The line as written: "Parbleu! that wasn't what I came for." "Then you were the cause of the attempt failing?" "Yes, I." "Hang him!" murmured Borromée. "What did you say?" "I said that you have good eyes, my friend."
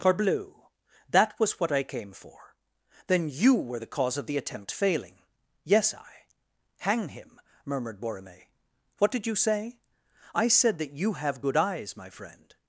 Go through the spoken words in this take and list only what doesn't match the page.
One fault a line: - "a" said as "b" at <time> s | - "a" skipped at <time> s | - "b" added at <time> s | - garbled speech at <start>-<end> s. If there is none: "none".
- "wasn't" said as "was" at 1.4 s